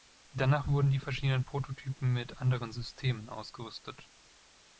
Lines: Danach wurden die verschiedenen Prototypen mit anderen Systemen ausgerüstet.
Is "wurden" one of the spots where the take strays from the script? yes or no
no